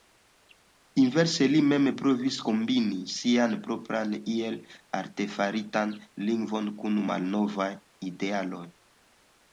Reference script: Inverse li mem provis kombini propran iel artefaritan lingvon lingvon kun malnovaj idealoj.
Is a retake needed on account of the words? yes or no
yes